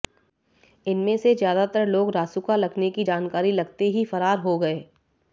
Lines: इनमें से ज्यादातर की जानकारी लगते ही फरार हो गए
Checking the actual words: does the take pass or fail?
fail